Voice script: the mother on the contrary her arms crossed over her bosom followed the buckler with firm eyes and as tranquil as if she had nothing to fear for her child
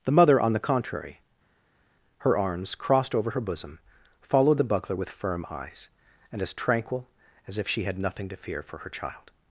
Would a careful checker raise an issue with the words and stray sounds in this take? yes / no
no